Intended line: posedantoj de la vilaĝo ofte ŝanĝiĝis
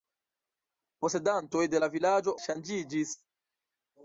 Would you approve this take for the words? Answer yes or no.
no